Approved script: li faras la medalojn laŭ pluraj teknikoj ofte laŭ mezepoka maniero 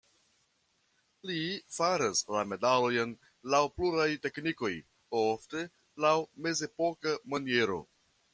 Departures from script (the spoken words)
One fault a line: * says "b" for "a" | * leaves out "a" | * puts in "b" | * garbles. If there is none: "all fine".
all fine